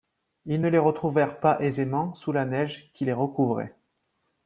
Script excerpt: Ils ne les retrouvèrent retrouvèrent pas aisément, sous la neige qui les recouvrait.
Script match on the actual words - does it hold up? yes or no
no